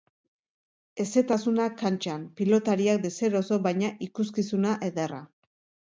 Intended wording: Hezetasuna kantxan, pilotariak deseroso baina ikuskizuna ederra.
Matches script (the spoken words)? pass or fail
pass